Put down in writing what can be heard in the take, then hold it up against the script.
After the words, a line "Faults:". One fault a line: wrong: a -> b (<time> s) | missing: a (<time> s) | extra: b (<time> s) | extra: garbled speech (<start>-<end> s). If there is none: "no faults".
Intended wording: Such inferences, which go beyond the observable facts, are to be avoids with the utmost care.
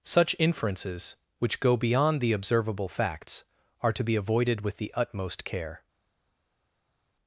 Such inferences, which go beyond the observable facts, are to be avoided with the utmost care.
Faults:
wrong: avoids -> avoided (4.2 s)